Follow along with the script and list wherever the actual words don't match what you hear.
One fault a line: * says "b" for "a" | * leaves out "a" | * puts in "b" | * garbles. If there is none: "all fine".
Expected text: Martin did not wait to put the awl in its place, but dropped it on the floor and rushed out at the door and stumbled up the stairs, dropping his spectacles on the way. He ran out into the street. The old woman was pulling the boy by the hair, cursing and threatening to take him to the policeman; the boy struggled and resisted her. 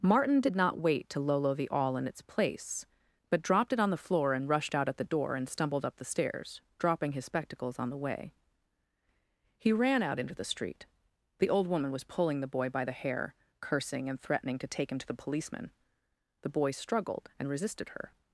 * says "lolo" for "put"